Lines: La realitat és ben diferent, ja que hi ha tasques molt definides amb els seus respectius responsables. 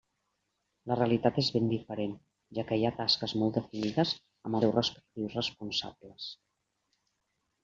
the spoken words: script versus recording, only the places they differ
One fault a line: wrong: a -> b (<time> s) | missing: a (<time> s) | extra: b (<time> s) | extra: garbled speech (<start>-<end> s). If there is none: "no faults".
missing: els (4.6 s)